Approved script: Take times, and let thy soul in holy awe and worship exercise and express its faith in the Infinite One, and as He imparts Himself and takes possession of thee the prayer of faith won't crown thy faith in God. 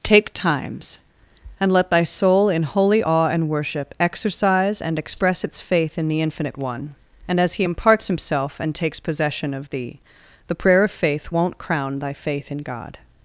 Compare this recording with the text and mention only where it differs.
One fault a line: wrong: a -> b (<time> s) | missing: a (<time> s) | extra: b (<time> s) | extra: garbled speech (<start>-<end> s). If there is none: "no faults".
no faults